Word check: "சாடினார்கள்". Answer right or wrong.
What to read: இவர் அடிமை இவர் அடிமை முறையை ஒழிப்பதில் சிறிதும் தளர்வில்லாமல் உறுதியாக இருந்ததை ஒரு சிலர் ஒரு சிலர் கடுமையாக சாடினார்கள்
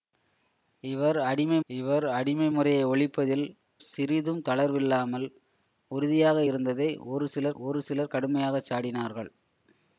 right